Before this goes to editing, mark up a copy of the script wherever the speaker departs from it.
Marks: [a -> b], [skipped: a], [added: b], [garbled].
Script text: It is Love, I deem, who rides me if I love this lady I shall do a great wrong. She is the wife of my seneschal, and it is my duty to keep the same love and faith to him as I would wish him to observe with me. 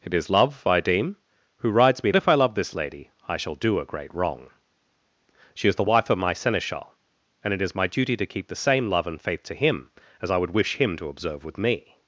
It is Love, I deem, who rides me if I love this lady I shall do a great wrong. She is the wife of my seneschal, and it is my duty to keep the same love and faith to him as I would wish him to observe with me.